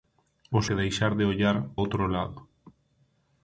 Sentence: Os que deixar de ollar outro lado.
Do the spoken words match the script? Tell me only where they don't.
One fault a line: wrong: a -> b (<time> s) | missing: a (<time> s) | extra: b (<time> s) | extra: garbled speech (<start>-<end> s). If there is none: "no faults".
no faults